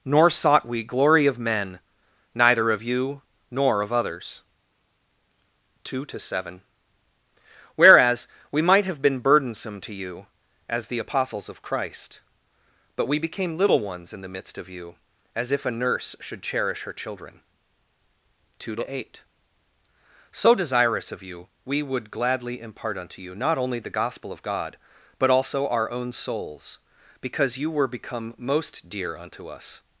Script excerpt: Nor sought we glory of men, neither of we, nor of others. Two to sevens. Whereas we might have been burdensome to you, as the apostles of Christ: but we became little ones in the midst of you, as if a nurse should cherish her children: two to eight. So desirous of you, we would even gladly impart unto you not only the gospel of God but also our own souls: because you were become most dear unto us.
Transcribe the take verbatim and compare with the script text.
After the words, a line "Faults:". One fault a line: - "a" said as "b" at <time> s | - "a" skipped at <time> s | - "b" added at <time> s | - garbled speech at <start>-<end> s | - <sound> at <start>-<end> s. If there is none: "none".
Nor sought we glory of men, neither of you, nor of others. Two to seven. Whereas we might have been burdensome to you, as the apostles of Christ: but we became little ones in the midst of you, as if a nurse should cherish her children: two to eight. So desirous of you, we would gladly impart unto you not only the gospel of God but also our own souls: because you were become most dear unto us.
Faults:
- "we" said as "you" at 2.8 s
- "sevens" said as "seven" at 6.2 s
- "even" skipped at 22.1 s